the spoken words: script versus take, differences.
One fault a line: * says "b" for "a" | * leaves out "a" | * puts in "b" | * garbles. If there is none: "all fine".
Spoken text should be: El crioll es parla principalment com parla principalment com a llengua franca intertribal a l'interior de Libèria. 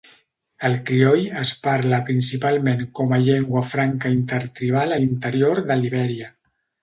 * leaves out "parla principalment com"